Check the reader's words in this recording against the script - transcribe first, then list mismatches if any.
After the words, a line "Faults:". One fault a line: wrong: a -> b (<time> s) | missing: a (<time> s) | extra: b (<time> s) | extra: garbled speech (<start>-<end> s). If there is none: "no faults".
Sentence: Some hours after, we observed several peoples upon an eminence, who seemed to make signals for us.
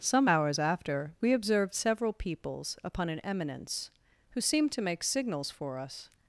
Some hours after, we observed several peoples upon an eminence, who seemed to make signals for us.
Faults:
no faults